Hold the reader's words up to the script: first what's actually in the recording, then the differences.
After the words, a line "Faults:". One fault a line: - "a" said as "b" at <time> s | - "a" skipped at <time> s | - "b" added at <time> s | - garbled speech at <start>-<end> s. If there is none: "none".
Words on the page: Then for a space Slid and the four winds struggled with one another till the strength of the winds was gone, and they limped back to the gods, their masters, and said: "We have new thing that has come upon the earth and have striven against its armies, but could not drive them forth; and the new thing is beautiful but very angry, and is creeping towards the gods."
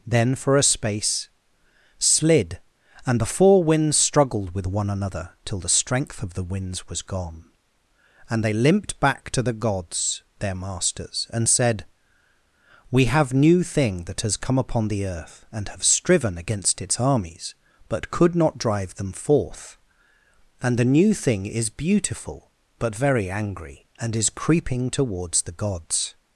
Then for a space Slid and the four winds struggled with one another till the strength of the winds was gone, and they limped back to the gods, their masters, and said: "We have new thing that has come upon the earth and have striven against its armies, but could not drive them forth; and the new thing is beautiful but very angry, and is creeping towards the gods."
Faults:
none